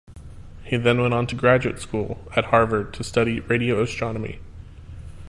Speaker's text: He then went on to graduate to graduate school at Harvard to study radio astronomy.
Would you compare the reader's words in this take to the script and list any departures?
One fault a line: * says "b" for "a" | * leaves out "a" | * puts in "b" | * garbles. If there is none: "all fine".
* leaves out "to graduate"